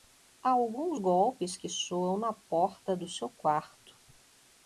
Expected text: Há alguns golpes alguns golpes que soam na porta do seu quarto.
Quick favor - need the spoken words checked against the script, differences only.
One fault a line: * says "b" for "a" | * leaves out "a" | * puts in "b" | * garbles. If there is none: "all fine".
* leaves out "alguns golpes"